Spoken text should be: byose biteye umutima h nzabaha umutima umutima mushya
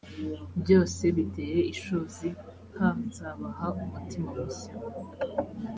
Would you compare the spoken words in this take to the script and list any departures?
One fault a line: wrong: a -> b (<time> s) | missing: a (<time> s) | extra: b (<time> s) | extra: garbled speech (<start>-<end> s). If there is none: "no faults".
wrong: umutima -> ishozi (1.7 s)
missing: umutima (4.3 s)